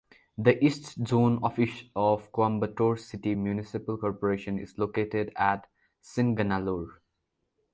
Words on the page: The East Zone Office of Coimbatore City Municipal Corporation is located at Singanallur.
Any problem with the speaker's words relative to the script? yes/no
no